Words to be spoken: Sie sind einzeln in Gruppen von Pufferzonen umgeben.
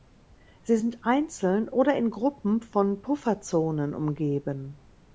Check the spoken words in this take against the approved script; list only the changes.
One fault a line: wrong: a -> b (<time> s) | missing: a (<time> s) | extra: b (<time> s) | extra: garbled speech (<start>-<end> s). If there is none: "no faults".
extra: oder (1.7 s)